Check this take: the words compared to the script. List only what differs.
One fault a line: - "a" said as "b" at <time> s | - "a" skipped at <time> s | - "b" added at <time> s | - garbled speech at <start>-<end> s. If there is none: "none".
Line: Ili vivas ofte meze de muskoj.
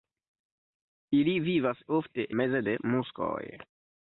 none